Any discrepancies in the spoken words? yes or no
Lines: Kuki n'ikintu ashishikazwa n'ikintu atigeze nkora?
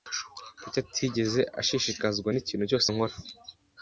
yes